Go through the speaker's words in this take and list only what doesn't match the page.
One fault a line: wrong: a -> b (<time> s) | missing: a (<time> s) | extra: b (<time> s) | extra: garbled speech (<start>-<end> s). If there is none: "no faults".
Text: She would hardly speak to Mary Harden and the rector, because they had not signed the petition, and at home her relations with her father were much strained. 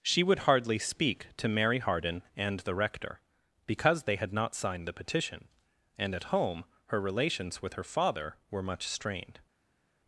no faults